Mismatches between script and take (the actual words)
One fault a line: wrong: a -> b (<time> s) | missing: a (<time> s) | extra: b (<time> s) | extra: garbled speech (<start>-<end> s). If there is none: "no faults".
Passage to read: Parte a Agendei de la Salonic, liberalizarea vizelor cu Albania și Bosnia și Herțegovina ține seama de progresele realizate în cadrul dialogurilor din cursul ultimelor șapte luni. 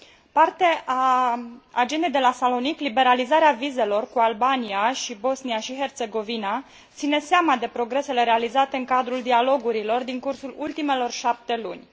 no faults